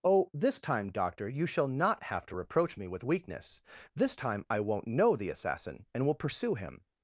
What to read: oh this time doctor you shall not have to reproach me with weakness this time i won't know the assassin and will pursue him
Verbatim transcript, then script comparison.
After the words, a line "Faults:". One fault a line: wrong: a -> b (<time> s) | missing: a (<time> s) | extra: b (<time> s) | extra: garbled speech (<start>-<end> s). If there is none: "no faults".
oh this time doctor you shall not have to reproach me with weakness this time i won't know the assassin and will pursue him
Faults:
no faults